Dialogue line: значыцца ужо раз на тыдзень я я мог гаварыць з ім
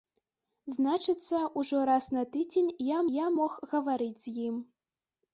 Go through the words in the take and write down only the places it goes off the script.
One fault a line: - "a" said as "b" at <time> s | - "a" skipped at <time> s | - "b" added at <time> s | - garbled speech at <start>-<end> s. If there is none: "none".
none